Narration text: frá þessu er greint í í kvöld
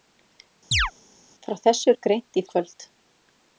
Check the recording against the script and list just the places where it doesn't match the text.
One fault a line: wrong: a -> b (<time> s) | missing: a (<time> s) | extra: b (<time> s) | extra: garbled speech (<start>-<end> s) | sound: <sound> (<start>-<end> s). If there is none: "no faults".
sound: chirp (0.7-0.9 s)